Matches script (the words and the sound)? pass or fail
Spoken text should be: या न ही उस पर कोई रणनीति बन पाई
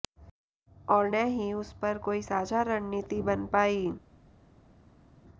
fail